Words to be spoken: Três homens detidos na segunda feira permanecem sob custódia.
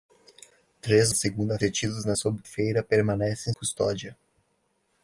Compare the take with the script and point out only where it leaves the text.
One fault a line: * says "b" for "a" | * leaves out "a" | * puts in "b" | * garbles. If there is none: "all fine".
* says "segunda" for "homens"
* says "sob" for "segunda"
* leaves out "sob"